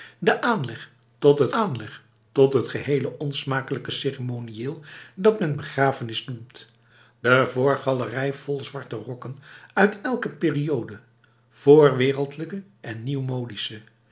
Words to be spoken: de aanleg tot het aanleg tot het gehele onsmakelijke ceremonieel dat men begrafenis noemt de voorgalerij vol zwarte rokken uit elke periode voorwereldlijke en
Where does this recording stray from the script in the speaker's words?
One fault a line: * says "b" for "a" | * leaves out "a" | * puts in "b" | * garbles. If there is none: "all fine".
all fine